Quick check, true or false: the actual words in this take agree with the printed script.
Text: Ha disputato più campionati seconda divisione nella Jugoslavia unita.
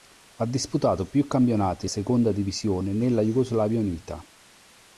true